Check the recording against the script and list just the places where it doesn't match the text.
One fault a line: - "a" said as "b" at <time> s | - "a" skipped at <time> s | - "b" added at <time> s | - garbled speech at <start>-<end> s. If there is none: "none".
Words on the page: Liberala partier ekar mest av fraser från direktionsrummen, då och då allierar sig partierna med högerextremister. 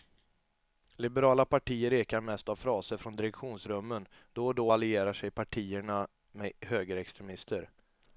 none